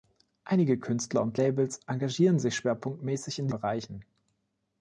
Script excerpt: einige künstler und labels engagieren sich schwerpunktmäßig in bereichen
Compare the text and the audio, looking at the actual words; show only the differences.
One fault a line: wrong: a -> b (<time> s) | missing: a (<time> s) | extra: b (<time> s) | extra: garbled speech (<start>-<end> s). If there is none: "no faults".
no faults